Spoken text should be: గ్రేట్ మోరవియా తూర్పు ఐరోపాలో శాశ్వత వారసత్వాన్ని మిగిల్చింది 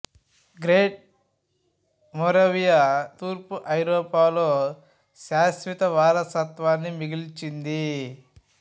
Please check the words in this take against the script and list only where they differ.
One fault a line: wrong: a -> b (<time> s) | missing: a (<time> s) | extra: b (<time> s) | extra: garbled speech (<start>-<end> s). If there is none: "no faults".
no faults